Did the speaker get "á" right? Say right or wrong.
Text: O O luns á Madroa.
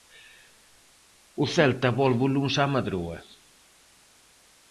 right